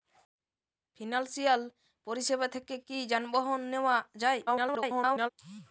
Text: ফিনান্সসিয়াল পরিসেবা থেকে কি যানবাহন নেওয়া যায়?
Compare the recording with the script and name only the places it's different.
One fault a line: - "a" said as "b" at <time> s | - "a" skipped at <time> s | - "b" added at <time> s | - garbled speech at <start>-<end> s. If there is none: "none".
- garbled speech at 4.5-5.3 s